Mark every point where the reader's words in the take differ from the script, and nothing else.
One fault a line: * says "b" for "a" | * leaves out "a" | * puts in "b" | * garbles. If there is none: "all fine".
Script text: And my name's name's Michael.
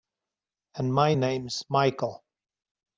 * leaves out "name's"